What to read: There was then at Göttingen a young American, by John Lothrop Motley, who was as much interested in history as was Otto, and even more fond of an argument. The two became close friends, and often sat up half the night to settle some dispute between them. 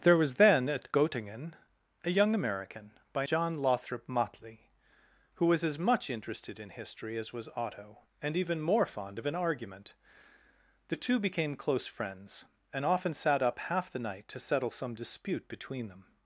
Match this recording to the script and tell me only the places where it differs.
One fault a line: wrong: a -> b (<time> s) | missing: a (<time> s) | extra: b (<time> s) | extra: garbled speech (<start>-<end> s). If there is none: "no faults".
no faults